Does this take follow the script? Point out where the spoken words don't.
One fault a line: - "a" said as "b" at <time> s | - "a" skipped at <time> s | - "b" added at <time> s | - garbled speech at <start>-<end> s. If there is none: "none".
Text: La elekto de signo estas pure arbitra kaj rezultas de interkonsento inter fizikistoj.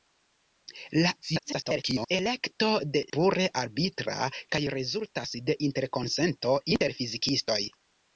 - garbled speech at 1.2-2.1 s
- "signo estas" skipped at 3.0 s